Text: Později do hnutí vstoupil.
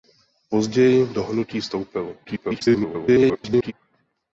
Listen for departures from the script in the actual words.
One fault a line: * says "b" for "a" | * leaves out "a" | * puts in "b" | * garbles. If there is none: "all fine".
* garbles